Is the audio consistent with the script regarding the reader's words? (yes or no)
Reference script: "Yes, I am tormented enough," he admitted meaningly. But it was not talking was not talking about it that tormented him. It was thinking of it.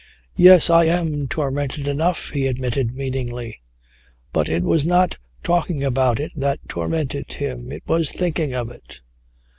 no